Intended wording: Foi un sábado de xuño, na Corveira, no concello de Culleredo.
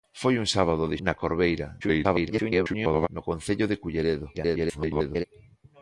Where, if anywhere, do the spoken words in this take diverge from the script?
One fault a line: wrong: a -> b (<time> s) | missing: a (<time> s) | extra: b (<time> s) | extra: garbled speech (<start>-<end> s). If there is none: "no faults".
missing: xuño (1.0 s)
extra: garbled speech (1.8-3.1 s)
extra: garbled speech (4.3-5.2 s)